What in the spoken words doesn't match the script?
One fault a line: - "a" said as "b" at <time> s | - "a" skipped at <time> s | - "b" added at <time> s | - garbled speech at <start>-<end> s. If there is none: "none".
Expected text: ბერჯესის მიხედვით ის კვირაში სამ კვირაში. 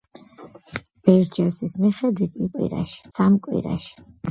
none